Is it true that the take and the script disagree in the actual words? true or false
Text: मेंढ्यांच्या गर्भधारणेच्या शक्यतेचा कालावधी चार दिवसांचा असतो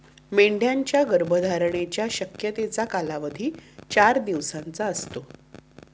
false